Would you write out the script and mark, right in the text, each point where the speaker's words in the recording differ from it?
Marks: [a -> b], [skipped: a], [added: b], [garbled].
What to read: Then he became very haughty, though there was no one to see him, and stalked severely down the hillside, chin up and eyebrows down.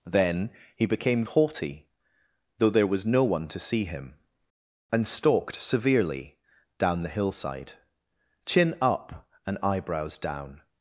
Then he became [skipped: very] haughty, though there was no one to see him, and stalked severely down the hillside, chin up and eyebrows down.